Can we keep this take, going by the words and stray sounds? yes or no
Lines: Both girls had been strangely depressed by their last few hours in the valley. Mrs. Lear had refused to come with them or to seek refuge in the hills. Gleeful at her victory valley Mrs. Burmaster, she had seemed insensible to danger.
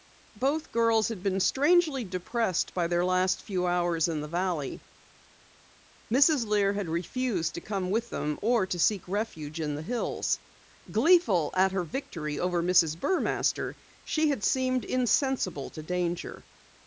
no